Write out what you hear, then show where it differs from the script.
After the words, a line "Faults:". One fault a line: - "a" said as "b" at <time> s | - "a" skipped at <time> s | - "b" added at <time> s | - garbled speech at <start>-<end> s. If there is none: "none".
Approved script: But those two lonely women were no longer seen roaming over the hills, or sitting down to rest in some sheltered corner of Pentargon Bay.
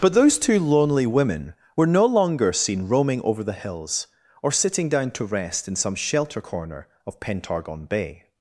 But those two lonely women were no longer seen roaming over the hills, or sitting down to rest in some shelter corner of Pentargon Bay.
Faults:
- "sheltered" said as "shelter" at 6.0 s